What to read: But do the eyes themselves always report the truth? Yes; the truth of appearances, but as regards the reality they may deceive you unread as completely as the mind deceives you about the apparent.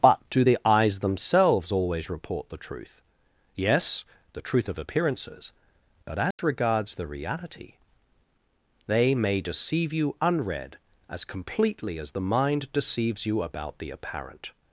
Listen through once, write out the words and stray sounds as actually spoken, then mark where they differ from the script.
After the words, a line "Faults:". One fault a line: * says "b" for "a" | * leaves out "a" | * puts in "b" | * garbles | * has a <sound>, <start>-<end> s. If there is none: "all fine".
But do the eyes themselves always report the truth? Yes; the truth of appearances, but as regards the reality they may deceive you unread as completely as the mind deceives you about the apparent.
Faults:
* has a dropout, 6.3-6.4 s